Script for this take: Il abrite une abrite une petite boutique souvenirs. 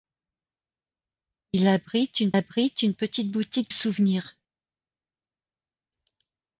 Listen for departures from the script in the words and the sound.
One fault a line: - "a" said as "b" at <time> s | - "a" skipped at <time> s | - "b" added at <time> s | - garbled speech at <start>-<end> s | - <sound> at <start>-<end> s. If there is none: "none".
none